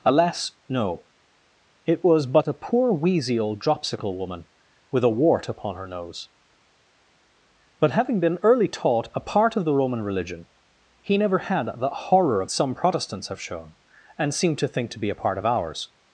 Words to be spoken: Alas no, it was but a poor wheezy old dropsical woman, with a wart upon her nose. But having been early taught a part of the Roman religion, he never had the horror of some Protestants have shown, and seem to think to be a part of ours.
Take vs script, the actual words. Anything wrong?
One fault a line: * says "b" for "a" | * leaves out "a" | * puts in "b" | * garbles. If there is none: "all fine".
all fine